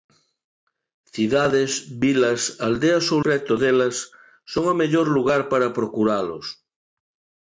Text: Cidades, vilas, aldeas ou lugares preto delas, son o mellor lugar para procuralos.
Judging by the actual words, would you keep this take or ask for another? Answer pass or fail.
fail